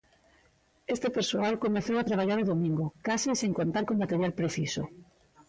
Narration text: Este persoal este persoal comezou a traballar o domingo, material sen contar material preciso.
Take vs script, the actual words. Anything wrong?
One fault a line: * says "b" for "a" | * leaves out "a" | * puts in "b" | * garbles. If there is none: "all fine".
* leaves out "este persoal"
* says "case" for "material"
* puts in "co"